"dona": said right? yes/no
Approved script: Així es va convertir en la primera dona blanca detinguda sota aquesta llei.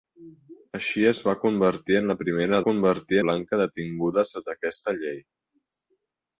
no